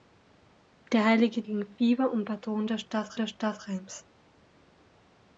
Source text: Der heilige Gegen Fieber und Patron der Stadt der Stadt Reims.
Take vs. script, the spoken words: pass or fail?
pass